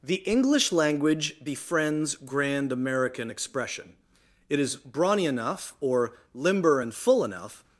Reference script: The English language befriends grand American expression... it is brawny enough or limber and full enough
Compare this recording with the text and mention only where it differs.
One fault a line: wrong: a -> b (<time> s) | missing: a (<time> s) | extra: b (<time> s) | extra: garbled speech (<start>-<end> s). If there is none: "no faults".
no faults